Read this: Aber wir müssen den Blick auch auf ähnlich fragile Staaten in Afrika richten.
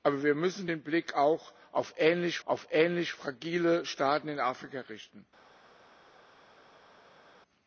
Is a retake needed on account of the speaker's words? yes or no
yes